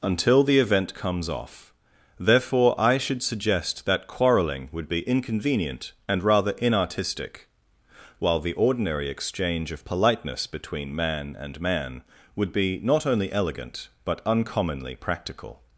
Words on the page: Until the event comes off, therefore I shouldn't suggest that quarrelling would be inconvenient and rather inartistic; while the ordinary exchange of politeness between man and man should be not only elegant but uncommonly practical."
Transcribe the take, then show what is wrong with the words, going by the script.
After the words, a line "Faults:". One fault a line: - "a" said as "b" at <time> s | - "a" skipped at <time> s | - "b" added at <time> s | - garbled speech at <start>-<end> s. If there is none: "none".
Until the event comes off, therefore I should suggest that quarrelling would be inconvenient and rather inartistic; while the ordinary exchange of politeness between man and man would be not only elegant but uncommonly practical."
Faults:
- "shouldn't" said as "should" at 3.0 s
- "should" said as "would" at 12.4 s